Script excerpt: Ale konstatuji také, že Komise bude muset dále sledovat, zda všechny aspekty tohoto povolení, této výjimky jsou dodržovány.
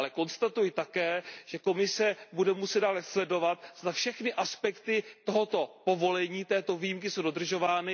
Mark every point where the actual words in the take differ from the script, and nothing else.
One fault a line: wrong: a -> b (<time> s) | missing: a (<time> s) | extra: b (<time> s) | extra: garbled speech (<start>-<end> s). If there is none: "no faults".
no faults